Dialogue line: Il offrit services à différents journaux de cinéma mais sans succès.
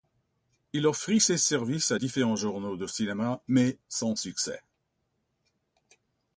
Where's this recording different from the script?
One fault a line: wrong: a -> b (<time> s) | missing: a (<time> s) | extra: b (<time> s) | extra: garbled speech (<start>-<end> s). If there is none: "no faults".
extra: ses (1.2 s)